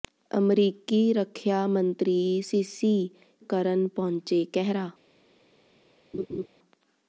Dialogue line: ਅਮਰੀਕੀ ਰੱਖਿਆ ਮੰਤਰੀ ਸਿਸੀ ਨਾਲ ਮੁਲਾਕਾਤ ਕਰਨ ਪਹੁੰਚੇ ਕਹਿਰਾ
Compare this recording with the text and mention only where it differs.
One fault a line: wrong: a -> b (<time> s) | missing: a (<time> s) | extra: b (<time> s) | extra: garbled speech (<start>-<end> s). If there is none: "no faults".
missing: ਨਾਲ ਮੁਲਾਕਾਤ (3.1 s)